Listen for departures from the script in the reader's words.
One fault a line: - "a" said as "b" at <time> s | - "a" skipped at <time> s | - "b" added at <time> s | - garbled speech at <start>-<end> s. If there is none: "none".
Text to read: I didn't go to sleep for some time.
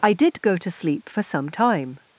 - "didn't" said as "did" at 0.1 s